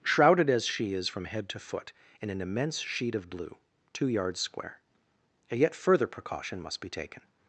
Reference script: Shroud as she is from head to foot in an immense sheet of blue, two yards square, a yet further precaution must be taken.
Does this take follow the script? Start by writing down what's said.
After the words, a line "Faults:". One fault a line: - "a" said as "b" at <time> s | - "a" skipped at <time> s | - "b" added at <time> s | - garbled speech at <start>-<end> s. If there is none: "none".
Shrouded as she is from head to foot in an immense sheet of blue, two yards square, a yet further precaution must be taken.
Faults:
- "Shroud" said as "Shrouded" at 0.0 s